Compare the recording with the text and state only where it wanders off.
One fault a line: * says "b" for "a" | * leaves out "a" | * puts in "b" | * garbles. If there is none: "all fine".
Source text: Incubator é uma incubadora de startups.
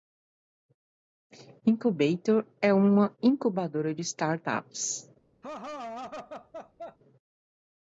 all fine